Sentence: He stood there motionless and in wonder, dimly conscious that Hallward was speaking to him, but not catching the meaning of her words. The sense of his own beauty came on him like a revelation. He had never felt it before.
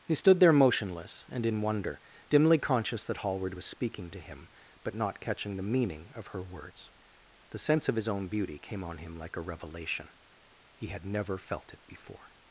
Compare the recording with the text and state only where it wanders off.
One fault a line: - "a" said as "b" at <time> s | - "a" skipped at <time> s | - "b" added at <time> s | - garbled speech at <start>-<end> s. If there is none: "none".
none